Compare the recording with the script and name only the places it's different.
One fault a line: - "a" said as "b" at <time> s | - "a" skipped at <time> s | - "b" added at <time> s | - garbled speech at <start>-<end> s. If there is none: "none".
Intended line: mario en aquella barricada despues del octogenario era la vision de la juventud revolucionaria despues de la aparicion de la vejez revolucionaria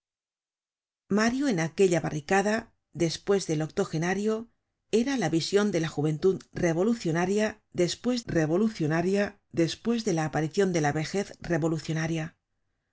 - "revolucionaria despues" added at 8.2 s